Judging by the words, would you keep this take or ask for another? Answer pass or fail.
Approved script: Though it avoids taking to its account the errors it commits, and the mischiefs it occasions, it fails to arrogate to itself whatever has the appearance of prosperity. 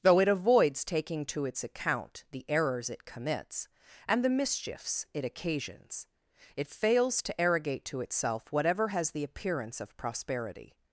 pass